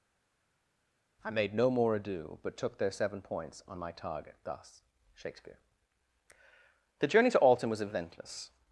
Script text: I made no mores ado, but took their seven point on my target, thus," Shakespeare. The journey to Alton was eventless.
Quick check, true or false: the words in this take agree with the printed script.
false